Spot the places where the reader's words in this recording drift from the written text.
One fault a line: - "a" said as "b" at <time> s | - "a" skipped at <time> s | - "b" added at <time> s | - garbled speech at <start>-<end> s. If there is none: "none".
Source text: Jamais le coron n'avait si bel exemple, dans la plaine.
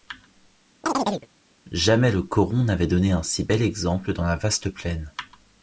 - "donné un" added at 2.9 s
- "vaste" added at 4.3 s